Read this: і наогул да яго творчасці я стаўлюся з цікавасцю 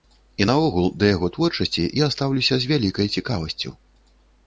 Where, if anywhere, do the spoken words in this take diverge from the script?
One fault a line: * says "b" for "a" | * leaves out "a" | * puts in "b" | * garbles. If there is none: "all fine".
* puts in "вялікай"